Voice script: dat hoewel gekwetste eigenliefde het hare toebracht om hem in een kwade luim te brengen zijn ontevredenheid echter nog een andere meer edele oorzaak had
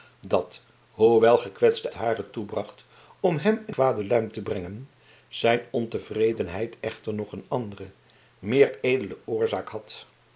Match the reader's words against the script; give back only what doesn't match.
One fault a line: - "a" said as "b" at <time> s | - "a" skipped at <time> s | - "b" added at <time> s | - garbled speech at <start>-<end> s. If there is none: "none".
- "eigenliefde het" skipped at 1.9 s
- "een" skipped at 3.8 s